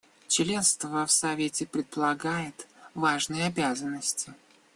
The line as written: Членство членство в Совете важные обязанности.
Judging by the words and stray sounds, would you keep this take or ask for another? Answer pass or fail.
fail